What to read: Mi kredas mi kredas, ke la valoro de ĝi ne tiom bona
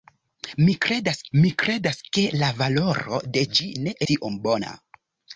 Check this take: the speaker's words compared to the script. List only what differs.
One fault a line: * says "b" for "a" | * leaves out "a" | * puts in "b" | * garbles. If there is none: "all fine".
all fine